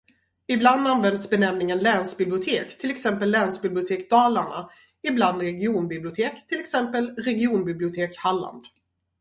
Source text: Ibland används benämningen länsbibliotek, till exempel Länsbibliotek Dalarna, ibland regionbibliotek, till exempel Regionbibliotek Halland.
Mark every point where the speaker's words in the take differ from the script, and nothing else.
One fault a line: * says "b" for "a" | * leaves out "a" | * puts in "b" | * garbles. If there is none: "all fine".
all fine